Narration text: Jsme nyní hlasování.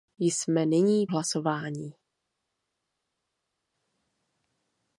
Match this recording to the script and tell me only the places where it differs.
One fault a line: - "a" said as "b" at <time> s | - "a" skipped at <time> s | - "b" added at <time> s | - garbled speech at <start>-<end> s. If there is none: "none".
none